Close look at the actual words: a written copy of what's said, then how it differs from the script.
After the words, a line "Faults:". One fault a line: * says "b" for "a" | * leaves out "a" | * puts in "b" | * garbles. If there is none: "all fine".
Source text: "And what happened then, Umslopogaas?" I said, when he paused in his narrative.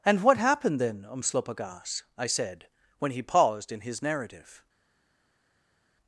"And what happened then, Umslopogaas?" I said, when he paused in his narrative.
Faults:
all fine